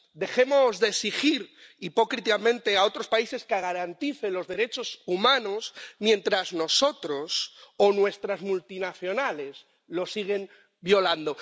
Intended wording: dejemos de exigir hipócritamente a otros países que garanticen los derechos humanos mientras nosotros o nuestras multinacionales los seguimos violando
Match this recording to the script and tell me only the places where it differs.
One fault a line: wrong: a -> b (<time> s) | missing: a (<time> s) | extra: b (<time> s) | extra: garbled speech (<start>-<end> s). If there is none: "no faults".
no faults